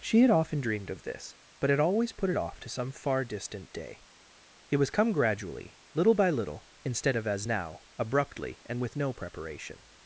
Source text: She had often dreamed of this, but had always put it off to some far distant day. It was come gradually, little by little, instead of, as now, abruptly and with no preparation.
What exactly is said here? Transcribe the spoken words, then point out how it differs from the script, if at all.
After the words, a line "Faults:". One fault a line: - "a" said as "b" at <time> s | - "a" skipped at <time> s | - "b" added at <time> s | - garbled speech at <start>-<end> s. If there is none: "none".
She had often dreamed of this, but had always put it off to some far distant day. It was come gradually, little by little, instead of, as now, abruptly and with no preparation.
Faults:
none